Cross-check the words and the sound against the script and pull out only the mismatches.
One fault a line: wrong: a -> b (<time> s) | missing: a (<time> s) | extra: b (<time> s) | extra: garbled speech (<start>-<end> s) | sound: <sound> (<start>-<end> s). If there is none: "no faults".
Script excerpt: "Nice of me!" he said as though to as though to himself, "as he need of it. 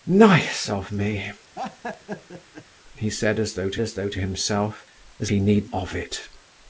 sound: laugh (1.6-2.7 s)